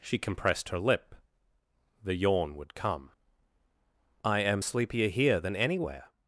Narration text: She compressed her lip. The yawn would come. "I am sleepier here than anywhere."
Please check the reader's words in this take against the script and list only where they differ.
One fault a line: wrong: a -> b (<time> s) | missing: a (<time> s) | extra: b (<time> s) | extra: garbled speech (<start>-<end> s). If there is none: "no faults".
no faults